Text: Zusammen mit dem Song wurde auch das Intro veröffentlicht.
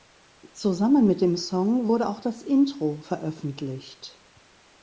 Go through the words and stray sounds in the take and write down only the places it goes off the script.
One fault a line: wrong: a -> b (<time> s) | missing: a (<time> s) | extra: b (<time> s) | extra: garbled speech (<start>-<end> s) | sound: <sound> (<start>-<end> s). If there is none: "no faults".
no faults